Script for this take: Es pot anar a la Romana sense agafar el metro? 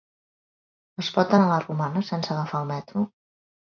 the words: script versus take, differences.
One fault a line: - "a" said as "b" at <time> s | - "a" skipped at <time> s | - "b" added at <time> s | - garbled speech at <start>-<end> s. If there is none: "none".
none